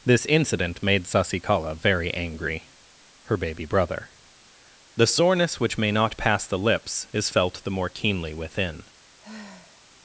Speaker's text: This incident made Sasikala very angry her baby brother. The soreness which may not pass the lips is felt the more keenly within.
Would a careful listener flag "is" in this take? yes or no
no